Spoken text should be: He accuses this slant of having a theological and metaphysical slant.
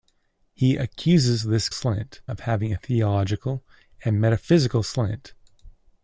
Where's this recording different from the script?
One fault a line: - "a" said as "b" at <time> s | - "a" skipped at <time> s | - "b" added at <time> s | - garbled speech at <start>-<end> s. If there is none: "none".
none